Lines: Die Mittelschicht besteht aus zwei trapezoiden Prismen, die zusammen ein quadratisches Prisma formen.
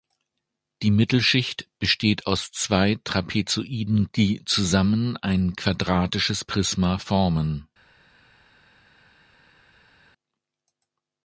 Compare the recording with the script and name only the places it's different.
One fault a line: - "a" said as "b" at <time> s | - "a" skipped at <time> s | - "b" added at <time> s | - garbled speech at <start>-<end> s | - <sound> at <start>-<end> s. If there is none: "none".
- "Prismen" skipped at 4.1 s